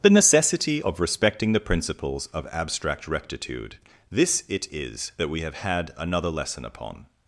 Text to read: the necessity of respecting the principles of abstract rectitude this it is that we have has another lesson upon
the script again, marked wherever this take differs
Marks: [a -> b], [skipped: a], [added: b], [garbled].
the necessity of respecting the principles of abstract rectitude this it is that we have [has -> had] another lesson upon